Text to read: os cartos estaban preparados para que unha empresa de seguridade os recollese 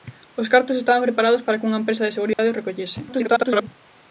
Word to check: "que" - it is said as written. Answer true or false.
true